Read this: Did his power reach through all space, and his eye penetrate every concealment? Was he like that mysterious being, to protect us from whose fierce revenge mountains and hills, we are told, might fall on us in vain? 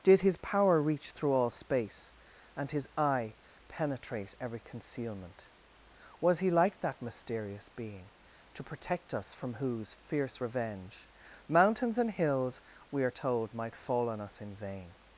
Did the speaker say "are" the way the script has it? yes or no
yes